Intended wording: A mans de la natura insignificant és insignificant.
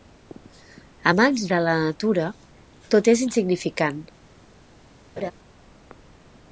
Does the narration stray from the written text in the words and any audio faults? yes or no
yes